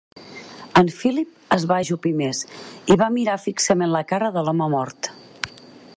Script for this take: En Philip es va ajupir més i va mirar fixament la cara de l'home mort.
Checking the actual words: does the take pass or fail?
pass